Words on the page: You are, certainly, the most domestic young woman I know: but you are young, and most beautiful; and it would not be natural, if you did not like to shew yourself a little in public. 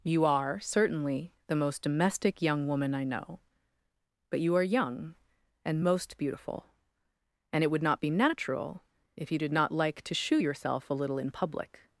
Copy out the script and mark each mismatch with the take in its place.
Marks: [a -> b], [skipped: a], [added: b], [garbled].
You are, certainly, the most domestic young woman I know: but you are young, and most beautiful; and it would not be natural, if you did not like to shew yourself a little in public.